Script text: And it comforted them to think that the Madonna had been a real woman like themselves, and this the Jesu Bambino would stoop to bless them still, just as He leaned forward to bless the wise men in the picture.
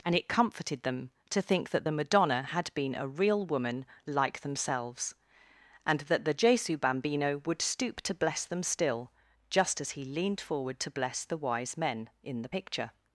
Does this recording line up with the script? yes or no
no